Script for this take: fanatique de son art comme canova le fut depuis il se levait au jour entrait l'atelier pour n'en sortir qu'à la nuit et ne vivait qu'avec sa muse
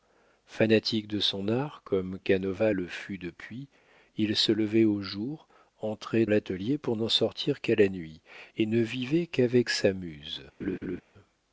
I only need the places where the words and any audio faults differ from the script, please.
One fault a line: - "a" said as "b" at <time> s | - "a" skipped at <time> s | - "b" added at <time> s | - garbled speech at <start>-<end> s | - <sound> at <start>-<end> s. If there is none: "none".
- laugh at 10.6-11.0 s